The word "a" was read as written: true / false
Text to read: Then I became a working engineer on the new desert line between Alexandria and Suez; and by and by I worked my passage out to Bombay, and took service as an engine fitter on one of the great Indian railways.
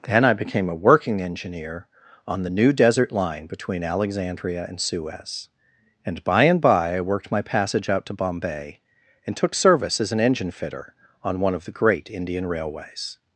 true